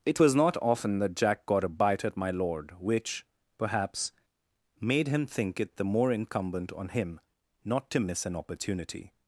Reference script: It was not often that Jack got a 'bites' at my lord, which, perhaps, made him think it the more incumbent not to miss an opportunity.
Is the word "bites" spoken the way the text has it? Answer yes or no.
no